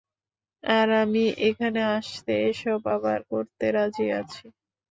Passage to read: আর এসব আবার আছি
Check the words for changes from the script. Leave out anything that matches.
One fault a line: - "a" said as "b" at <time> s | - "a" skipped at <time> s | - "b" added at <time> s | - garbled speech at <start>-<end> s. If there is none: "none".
- "আমি এখানে আসতে" added at 1.0 s
- "করতে রাজি" added at 3.3 s